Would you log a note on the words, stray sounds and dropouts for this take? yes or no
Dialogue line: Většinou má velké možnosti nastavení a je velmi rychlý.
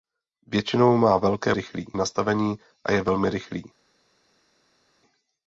yes